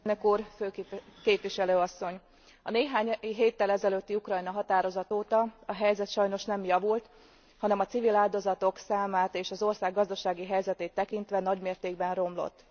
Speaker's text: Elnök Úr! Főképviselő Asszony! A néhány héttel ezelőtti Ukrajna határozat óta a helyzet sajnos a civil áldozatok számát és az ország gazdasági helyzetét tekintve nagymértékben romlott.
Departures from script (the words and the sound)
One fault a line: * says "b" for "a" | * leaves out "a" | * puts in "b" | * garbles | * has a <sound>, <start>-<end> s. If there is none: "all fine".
* puts in "nem javult hanem"